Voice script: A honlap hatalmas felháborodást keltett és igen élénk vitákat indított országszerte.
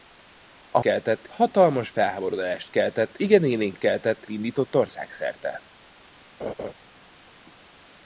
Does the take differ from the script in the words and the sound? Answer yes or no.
yes